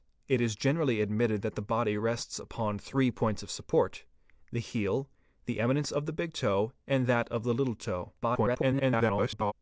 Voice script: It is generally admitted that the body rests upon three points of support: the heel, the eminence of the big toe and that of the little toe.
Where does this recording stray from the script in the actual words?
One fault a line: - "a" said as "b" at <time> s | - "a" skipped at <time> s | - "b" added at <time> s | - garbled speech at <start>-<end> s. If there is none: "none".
- garbled speech at 8.2-9.5 s